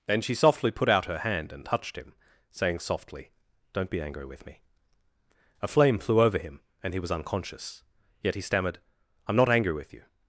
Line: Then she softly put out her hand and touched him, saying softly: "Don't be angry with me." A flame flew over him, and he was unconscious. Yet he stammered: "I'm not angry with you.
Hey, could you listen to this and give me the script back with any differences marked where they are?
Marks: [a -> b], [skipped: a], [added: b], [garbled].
Then she softly put out her hand and touched him, saying softly: "Don't be angry with me." A flame flew over him, and he was unconscious. Yet he stammered: "I'm not angry with you.